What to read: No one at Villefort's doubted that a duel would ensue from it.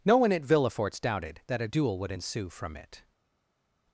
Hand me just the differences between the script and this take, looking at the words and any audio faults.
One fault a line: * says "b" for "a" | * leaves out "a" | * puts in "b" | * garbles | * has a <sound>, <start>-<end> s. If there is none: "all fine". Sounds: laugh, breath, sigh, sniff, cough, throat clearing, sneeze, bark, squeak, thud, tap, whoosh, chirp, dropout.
all fine